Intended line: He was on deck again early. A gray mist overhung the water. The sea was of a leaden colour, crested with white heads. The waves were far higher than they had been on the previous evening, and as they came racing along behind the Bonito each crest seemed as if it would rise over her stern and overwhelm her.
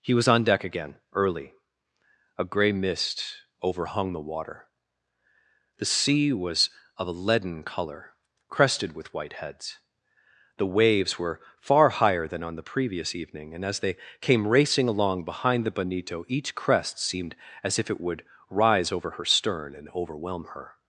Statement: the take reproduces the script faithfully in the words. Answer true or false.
false